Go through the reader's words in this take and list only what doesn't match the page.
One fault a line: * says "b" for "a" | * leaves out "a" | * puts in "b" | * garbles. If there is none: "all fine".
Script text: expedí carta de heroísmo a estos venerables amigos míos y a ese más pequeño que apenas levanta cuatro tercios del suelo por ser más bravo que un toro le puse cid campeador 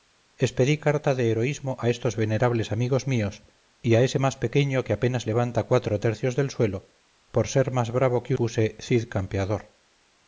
* leaves out "un toro le"